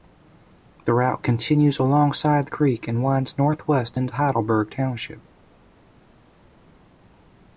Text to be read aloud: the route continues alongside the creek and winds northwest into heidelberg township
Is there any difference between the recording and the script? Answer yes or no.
no